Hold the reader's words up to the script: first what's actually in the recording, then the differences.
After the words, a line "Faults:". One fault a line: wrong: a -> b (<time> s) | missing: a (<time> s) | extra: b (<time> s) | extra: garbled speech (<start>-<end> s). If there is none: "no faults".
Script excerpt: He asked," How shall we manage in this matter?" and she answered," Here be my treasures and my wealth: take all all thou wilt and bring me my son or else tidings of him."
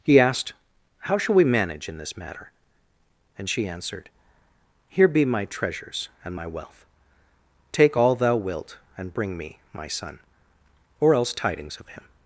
He asked," How shall we manage in this matter?" and she answered," Here be my treasures and my wealth: take all thou wilt and bring me my son or else tidings of him."
Faults:
missing: all (8.2 s)